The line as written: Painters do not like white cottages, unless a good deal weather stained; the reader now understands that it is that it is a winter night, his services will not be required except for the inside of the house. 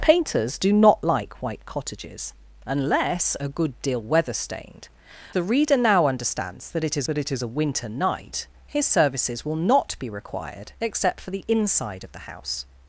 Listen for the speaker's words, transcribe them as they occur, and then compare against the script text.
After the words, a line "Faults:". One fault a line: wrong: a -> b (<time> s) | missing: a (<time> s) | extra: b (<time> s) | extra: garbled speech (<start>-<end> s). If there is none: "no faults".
Painters do not like white cottages, unless a good deal weather stained; the reader now understands that it is that it is a winter night, his services will not be required except for the inside of the house.
Faults:
no faults